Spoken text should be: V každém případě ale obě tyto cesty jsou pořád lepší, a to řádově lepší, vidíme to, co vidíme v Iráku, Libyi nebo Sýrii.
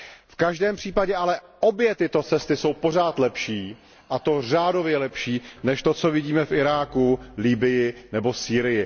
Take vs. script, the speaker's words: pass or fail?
fail